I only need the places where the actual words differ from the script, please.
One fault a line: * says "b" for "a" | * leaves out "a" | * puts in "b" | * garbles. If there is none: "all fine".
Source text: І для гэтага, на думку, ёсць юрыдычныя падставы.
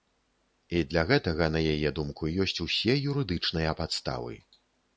* puts in "яе"
* puts in "усе"